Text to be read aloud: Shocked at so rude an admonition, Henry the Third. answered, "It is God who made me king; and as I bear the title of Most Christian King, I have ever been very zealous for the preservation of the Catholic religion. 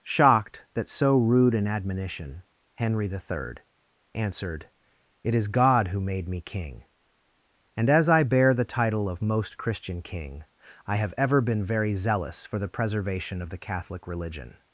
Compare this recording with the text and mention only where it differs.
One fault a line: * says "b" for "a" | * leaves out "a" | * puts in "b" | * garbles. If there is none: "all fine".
* says "that" for "at"